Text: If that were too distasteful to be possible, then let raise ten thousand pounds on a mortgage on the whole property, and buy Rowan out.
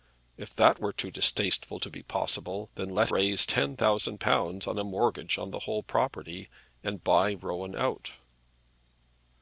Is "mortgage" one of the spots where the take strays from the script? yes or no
no